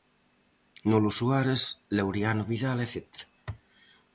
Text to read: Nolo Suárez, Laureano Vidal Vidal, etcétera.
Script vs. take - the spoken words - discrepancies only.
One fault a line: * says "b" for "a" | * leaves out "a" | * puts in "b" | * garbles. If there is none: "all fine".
* leaves out "Vidal"